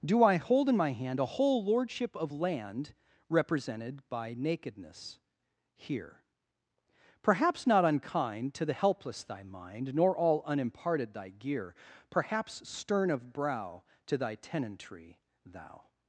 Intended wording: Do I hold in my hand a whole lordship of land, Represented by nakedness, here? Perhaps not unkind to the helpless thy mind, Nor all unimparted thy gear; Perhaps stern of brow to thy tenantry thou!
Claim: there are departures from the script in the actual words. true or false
false